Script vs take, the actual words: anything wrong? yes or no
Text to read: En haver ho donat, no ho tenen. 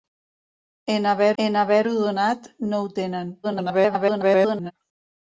yes